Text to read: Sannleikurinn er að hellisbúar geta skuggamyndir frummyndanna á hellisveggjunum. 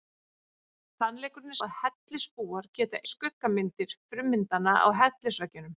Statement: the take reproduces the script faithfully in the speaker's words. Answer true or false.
true